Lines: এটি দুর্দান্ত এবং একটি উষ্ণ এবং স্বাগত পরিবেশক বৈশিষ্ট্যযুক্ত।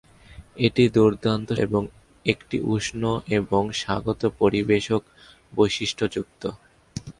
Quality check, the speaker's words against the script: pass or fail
pass